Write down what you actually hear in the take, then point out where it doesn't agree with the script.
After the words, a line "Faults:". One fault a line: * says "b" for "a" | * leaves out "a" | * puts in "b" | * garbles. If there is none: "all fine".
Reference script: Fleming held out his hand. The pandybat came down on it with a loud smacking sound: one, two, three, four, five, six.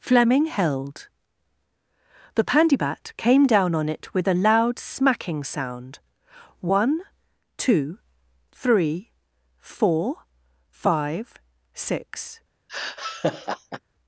Fleming held. The pandybat came down on it with a loud smacking sound: one, two, three, four, five, six.
Faults:
* leaves out "out his hand"